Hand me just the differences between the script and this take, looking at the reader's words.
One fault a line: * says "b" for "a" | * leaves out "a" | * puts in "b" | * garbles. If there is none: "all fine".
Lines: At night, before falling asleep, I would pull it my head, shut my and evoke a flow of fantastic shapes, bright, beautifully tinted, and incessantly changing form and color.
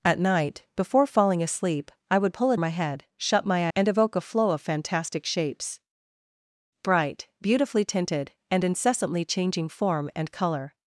all fine